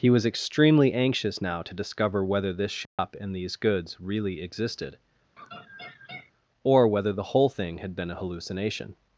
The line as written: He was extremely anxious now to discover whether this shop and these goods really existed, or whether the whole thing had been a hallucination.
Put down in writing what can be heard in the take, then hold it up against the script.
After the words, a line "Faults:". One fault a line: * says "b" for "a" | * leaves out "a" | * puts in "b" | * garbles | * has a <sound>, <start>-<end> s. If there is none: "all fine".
He was extremely anxious now to discover whether this shop and these goods really existed, or whether the whole thing had been a hallucination.
Faults:
* has a dropout, 2.9-3.0 s
* has a laugh, 5.4-6.3 s